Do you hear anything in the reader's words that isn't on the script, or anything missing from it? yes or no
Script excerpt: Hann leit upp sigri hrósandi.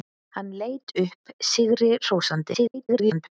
yes